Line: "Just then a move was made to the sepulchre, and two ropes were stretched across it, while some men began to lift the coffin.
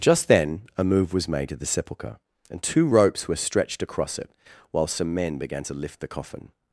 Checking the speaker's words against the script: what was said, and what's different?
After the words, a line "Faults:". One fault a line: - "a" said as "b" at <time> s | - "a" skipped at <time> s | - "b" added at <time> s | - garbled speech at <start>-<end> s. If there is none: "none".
"Just then a move was made to the sepulchre, and two ropes were stretched across it, while some men began to lift the coffin.
Faults:
none